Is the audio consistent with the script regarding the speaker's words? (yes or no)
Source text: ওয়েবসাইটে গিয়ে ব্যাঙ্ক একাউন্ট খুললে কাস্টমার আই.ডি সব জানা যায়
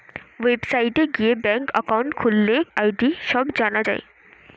no